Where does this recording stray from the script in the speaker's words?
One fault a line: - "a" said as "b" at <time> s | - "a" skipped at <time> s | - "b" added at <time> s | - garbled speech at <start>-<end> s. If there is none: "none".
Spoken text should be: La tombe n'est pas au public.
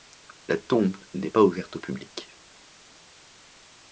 - "ouverte" added at 1.4 s